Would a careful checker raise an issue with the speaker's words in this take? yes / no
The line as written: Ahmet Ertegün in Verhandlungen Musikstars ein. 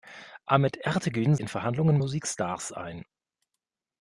no